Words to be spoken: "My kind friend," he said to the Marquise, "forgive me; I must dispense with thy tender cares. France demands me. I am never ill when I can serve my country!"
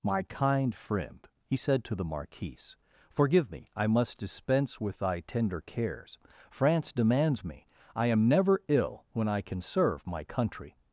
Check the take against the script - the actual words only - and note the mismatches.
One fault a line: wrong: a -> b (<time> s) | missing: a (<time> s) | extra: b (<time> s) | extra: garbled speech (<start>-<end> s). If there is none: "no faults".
no faults